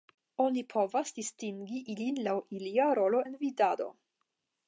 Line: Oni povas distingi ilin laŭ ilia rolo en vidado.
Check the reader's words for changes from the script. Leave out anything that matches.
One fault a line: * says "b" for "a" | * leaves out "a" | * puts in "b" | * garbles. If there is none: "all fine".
all fine